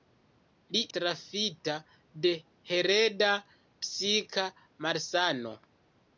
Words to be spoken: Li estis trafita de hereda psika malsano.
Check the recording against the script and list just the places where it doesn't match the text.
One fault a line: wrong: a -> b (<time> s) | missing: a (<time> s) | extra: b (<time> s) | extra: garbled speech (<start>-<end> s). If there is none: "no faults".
missing: estis (0.8 s)